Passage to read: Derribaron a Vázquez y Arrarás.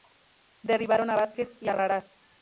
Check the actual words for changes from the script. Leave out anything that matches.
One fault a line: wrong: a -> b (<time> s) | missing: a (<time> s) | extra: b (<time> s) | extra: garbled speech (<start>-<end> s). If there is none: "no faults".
no faults